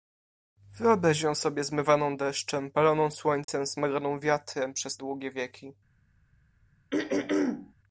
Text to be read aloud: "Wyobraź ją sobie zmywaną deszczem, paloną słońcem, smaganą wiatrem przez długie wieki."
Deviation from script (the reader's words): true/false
false